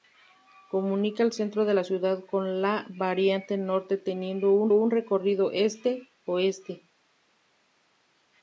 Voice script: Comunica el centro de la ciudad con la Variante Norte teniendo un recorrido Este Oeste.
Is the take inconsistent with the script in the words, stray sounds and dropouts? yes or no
yes